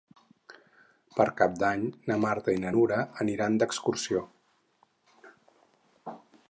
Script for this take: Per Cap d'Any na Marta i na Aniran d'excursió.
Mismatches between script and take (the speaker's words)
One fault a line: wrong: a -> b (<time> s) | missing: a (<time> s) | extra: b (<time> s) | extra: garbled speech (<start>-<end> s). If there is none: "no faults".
extra: Nura (2.8 s)